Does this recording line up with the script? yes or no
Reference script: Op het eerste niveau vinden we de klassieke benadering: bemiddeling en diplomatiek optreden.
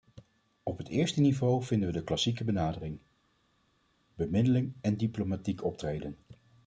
yes